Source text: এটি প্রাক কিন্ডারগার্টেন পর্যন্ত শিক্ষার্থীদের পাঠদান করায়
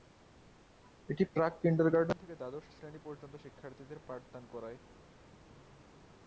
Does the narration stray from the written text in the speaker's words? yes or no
yes